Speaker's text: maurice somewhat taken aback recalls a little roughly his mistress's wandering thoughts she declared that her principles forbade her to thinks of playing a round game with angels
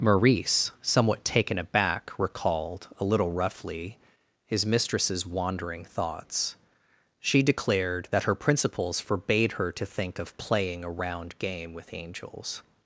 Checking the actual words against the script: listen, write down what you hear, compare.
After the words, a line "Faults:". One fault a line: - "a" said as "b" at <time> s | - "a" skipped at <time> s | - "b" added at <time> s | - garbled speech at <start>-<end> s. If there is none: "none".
maurice somewhat taken aback recalled a little roughly his mistress's wandering thoughts she declared that her principles forbade her to think of playing a round game with angels
Faults:
- "recalls" said as "recalled" at 2.2 s
- "thinks" said as "think" at 9.8 s